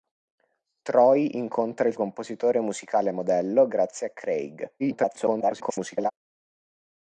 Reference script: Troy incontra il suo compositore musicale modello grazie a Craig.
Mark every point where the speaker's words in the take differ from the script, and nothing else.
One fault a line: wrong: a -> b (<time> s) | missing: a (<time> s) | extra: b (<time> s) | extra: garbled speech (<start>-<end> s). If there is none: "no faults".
missing: suo (1.9 s)
extra: garbled speech (4.8-6.1 s)